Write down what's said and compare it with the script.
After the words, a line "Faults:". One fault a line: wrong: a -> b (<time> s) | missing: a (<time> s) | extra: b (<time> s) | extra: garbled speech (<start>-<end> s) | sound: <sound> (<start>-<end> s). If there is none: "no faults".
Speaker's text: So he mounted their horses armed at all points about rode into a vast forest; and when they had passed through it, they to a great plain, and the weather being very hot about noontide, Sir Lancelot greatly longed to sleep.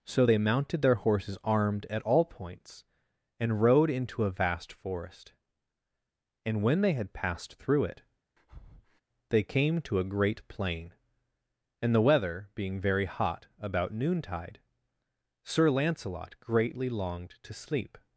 So they mounted their horses armed at all points and rode into a vast forest; and when they had passed through it, they came to a great plain, and the weather being very hot about noontide, Sir Lancelot greatly longed to sleep.
Faults:
wrong: he -> they (0.2 s)
wrong: about -> and (3.4 s)
sound: breath (8.4-9.0 s)
extra: came (9.4 s)